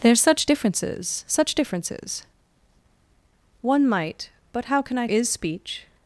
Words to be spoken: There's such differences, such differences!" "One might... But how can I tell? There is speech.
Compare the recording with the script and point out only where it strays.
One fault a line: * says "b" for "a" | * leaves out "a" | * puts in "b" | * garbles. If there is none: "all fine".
* leaves out "tell There"